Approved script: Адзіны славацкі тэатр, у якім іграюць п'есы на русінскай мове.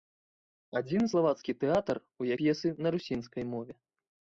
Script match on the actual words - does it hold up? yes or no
no